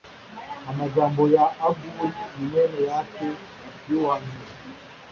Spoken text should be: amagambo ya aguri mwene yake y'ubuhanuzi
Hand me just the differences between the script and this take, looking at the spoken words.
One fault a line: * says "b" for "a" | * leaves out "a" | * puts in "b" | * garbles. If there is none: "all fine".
all fine